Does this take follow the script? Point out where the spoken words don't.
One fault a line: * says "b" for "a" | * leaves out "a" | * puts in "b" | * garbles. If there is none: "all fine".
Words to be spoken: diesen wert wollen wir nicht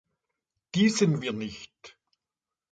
* leaves out "wert wollen"